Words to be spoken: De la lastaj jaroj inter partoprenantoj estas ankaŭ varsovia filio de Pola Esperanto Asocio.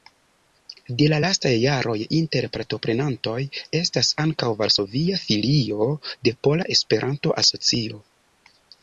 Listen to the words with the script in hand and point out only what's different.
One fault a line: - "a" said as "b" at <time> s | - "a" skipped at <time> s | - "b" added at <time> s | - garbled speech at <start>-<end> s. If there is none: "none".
none